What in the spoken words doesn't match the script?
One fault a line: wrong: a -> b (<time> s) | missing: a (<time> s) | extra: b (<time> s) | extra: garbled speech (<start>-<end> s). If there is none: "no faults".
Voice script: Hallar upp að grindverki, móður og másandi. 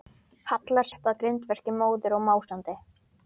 no faults